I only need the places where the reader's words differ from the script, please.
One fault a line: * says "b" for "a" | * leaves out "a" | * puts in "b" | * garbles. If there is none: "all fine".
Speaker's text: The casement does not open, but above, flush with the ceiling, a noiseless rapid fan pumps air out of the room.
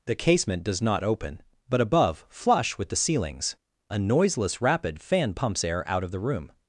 * says "ceilings" for "ceiling"